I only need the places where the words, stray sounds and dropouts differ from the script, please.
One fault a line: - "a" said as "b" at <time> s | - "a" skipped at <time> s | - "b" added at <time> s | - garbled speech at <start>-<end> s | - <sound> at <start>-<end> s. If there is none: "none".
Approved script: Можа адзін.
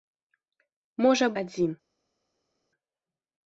none